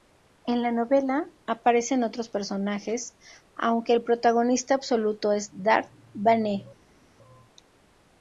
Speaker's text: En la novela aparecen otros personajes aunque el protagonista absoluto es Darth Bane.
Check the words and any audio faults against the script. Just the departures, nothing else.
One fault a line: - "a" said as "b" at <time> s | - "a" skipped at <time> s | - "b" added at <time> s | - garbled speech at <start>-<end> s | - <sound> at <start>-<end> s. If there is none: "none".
none